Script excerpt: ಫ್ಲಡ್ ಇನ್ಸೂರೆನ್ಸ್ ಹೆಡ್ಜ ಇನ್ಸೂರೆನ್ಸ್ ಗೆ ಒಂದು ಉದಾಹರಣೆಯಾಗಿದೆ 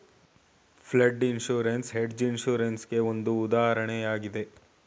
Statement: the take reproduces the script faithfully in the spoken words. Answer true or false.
true